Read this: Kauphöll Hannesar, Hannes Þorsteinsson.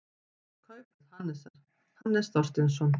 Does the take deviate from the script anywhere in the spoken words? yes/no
no